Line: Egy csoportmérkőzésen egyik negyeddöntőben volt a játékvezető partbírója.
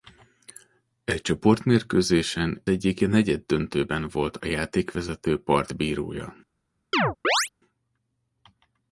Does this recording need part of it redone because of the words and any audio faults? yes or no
yes